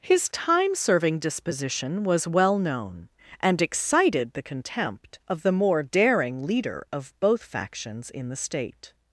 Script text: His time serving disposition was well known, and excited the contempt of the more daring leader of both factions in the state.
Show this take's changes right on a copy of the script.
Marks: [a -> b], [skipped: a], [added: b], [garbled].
His time serving disposition was well known, and excited the contempt of the more daring leader of both factions in the state.